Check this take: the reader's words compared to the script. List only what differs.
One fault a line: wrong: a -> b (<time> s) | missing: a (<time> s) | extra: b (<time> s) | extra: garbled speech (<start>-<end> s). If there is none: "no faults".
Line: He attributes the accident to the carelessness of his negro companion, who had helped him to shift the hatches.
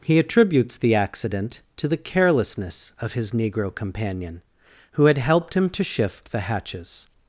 no faults